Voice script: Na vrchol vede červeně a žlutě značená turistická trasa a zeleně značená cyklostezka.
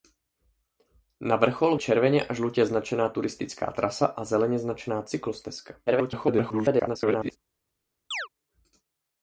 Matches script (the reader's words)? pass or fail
fail